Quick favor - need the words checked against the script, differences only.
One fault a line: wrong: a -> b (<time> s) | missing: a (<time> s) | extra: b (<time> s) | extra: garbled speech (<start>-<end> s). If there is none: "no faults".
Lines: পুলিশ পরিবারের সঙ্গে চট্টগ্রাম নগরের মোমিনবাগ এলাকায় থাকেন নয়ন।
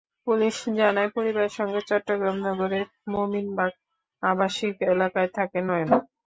extra: জানায় (0.8 s)
extra: আবাসিক (4.2 s)